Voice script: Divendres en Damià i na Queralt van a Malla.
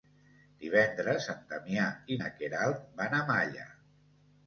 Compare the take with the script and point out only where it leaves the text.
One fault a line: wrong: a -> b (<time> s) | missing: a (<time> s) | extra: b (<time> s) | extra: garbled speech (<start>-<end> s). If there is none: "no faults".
no faults